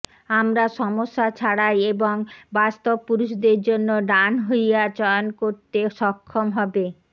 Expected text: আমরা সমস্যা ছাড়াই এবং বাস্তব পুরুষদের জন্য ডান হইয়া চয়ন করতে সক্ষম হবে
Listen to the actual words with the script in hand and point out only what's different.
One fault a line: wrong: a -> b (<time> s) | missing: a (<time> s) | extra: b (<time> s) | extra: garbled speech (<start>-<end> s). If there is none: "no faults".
no faults